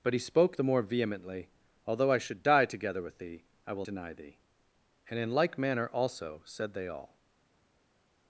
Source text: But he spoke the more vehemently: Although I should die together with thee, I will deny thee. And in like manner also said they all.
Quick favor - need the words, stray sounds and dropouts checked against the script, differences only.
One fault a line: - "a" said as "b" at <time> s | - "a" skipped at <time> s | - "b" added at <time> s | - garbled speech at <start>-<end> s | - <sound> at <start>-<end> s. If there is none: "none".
none